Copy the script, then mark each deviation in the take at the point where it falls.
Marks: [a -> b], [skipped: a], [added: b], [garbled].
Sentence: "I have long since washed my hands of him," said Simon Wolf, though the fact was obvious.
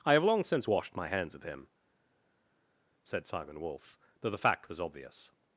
"I have long since washed my hands of him," said Simon Wolf, though the fact was obvious.